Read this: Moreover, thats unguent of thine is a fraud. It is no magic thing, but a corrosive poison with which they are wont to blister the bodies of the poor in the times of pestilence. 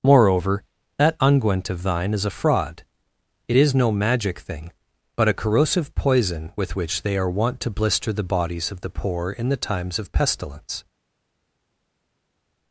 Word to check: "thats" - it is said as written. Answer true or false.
false